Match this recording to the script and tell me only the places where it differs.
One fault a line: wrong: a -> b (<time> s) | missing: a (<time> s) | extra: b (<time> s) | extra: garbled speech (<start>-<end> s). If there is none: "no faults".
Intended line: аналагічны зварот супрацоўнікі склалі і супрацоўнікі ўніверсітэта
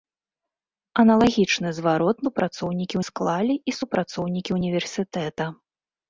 no faults